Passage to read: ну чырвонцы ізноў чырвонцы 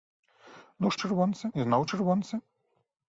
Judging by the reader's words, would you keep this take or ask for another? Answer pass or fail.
pass